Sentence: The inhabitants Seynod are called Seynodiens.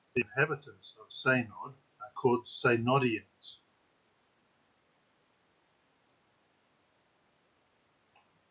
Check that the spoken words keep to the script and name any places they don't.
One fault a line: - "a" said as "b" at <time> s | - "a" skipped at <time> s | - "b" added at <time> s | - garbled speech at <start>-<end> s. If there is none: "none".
- "of" added at 1.0 s